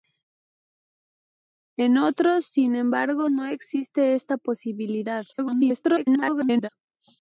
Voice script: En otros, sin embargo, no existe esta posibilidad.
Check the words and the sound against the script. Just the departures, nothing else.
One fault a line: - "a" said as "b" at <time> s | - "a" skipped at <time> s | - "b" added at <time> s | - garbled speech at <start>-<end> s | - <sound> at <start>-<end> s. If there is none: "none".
- garbled speech at 5.3-6.7 s